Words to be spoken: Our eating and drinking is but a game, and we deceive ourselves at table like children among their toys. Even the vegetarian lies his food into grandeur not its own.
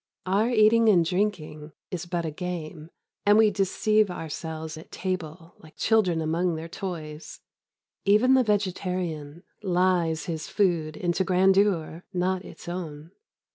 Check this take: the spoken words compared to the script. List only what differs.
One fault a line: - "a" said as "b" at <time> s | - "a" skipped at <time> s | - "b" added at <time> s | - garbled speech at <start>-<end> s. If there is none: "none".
none